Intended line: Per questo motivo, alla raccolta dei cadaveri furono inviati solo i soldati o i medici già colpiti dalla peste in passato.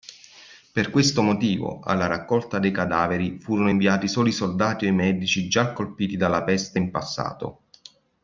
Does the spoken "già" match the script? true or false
true